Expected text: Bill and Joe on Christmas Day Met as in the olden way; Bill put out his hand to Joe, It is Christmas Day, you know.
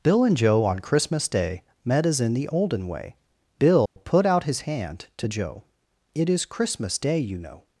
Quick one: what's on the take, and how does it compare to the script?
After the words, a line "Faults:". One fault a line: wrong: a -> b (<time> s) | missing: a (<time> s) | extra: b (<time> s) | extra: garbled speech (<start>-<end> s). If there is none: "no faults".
Bill and Joe on Christmas Day Met as in the olden way; Bill put out his hand to Joe, It is Christmas Day, you know.
Faults:
no faults